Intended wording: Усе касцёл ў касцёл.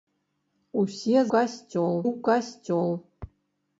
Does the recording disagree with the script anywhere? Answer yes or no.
no